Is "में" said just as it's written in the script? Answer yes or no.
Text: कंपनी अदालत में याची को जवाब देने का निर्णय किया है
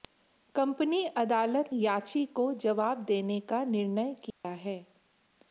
no